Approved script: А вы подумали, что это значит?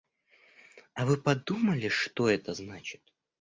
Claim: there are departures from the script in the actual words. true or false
false